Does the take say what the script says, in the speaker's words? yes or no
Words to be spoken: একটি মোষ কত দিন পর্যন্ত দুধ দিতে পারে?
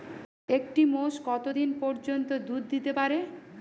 yes